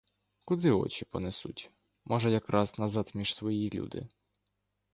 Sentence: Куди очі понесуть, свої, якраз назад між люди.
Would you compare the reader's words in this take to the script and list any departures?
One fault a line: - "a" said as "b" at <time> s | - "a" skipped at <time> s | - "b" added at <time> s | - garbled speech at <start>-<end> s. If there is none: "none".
- "свої" said as "може" at 2.0 s
- "свої" added at 3.3 s